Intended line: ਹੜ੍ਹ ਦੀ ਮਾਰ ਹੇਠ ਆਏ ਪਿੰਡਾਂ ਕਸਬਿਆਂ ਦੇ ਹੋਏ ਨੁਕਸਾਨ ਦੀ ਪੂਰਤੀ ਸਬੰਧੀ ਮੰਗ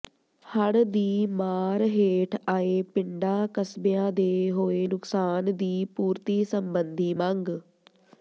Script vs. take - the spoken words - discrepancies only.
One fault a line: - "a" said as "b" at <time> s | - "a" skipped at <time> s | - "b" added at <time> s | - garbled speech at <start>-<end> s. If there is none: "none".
none